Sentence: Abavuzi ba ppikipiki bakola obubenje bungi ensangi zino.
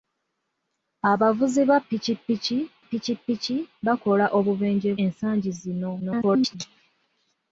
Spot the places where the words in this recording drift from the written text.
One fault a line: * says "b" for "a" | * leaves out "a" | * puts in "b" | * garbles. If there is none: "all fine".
* puts in "ppikipiki"
* leaves out "bungi"
* garbles